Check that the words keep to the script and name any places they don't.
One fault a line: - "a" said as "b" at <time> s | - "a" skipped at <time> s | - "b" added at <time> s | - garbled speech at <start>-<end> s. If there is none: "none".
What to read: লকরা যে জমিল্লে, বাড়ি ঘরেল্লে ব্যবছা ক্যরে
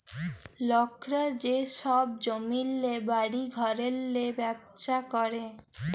- "ছব" added at 1.8 s